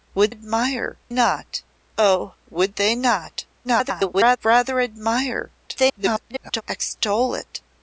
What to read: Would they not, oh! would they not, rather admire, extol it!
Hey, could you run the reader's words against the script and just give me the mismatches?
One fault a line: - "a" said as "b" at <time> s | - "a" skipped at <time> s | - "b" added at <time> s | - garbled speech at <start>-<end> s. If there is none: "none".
- "they" said as "admire" at 0.3 s
- garbled speech at 3.6-4.4 s
- garbled speech at 5.7-6.6 s